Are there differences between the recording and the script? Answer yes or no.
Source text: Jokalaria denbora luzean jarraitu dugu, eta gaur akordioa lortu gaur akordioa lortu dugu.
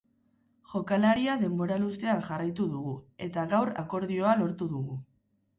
yes